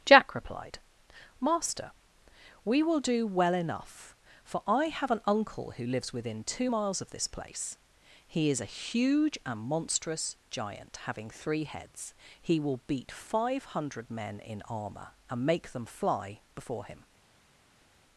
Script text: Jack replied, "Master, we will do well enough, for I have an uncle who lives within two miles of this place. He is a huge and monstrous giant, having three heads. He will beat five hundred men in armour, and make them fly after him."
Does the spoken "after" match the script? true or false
false